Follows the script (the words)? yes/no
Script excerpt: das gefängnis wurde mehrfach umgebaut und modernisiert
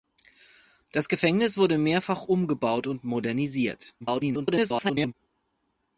no